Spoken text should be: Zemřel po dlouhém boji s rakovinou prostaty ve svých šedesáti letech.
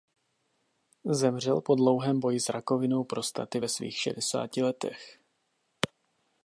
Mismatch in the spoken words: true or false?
false